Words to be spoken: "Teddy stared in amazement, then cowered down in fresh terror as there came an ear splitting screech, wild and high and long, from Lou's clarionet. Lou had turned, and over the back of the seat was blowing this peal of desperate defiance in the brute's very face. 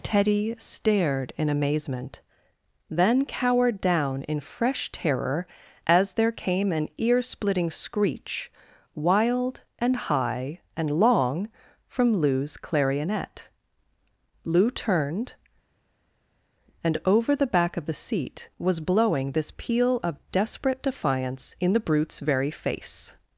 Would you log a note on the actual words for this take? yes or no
yes